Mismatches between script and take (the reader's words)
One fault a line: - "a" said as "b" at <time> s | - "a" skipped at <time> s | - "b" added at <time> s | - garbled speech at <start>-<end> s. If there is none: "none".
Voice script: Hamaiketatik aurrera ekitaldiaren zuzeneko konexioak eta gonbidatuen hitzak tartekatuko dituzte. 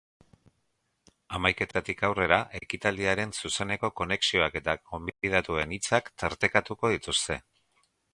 none